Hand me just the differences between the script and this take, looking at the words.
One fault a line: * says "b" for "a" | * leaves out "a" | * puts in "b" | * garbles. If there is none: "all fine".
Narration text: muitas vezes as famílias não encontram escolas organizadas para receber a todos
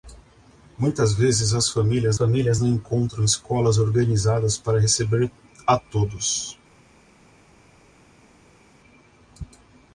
* puts in "famílias"